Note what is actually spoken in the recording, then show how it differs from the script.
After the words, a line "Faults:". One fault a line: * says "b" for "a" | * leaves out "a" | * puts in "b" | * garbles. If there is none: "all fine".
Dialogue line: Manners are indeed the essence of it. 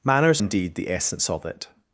Manners indeed the essence of it.
Faults:
* leaves out "are"